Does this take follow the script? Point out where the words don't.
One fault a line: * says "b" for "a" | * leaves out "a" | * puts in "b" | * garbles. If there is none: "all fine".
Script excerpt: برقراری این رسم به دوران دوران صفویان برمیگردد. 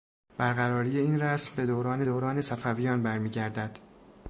all fine